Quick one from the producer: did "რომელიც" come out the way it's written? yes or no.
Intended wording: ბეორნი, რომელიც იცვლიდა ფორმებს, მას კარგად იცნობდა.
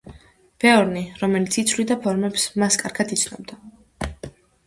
yes